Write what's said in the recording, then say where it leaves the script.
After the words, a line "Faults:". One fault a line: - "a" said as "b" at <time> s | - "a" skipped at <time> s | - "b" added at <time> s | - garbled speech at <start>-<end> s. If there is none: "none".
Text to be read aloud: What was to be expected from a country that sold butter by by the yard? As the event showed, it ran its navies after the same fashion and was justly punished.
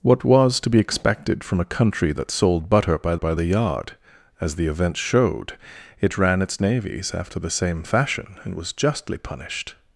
What was to be expected from a country that sold butter by by the yard? As the event showed, it ran its navies after the same fashion and was justly punished.
Faults:
none